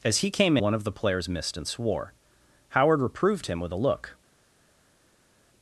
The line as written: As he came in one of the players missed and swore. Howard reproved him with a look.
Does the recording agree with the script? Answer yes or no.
no